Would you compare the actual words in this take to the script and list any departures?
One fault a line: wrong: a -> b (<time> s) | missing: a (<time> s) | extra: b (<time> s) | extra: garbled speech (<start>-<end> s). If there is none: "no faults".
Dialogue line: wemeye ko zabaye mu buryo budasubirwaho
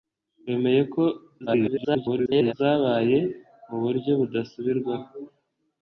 extra: garbled speech (1.5-2.5 s)